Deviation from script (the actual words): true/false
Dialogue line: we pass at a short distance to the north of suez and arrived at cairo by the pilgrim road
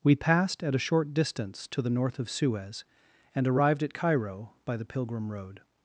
true